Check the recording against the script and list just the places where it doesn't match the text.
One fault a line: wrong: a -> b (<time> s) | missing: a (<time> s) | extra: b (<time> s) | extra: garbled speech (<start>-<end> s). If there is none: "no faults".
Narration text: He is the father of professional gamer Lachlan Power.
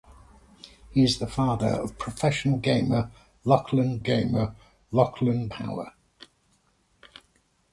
extra: gamer Lachlan (4.0 s)